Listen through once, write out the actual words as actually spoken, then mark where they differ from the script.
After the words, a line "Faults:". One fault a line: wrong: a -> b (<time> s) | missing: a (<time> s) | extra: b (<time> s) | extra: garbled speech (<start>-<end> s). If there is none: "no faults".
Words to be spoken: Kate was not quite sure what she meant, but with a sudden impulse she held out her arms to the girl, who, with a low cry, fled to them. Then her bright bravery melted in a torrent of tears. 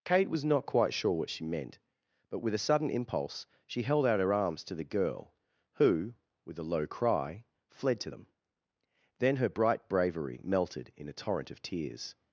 Kate was not quite sure what she meant, but with a sudden impulse she held out her arms to the girl, who, with a low cry, fled to them. Then her bright bravery melted in a torrent of tears.
Faults:
no faults